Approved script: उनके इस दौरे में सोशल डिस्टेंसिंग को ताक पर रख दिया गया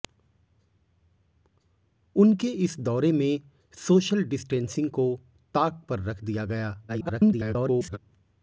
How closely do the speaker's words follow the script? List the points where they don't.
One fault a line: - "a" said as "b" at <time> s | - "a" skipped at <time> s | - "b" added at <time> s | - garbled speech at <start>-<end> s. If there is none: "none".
- garbled speech at 6.9-8.0 s